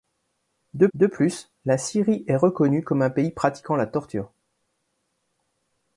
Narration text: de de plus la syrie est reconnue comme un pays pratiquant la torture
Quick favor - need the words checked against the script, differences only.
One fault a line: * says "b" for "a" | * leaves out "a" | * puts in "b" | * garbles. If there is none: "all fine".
all fine